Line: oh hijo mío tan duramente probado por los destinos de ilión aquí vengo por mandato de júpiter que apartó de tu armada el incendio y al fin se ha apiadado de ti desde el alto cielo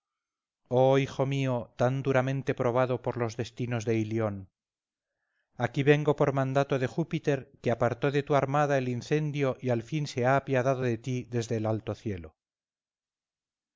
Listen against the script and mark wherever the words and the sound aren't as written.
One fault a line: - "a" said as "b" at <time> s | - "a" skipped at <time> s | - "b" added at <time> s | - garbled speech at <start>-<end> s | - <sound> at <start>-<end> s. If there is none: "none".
none